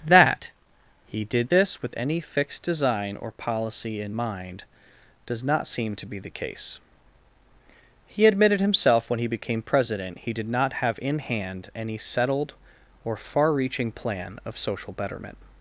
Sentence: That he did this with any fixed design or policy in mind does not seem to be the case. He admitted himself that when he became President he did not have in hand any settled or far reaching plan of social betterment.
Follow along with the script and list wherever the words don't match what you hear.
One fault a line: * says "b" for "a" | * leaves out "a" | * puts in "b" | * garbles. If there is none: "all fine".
* leaves out "that"